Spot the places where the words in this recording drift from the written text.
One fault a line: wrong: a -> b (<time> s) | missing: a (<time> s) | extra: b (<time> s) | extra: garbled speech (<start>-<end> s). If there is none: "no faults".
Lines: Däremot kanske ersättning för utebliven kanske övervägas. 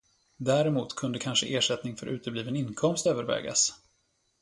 extra: kunde (0.9 s)
wrong: kanske -> inkomst (2.6 s)